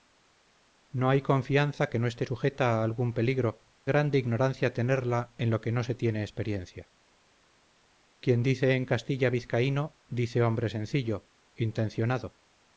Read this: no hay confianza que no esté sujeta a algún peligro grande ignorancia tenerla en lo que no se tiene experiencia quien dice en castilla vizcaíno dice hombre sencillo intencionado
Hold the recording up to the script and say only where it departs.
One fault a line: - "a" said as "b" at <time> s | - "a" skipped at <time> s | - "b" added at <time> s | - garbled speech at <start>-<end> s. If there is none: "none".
none